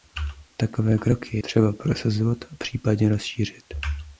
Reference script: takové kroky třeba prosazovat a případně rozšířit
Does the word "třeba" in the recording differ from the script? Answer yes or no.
no